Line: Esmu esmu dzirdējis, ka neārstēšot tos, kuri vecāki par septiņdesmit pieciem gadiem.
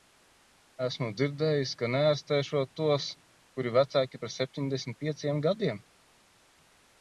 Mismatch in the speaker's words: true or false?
true